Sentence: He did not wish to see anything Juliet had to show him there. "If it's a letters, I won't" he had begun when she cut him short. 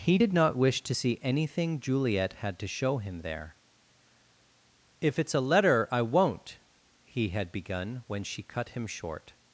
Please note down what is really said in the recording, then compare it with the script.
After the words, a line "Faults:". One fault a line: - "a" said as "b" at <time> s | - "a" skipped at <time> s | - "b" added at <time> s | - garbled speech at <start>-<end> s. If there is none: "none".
He did not wish to see anything Juliet had to show him there. "If it's a letter, I won't" he had begun when she cut him short.
Faults:
- "letters" said as "letter" at 5.4 s